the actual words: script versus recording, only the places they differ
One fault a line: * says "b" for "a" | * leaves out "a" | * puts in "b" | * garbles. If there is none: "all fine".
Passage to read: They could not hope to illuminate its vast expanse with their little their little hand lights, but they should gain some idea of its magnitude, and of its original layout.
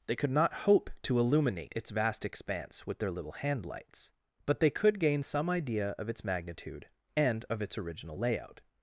* leaves out "their little"
* says "could" for "should"